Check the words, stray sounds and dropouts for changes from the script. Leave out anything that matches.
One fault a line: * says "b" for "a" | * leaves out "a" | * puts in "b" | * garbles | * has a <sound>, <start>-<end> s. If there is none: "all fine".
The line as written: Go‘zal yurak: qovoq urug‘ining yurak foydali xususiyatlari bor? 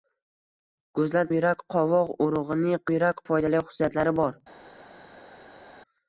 all fine